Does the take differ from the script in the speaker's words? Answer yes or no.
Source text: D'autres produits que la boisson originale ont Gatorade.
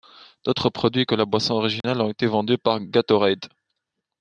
yes